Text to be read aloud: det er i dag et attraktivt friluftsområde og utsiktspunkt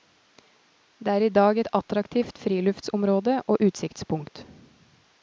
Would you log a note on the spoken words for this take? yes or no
no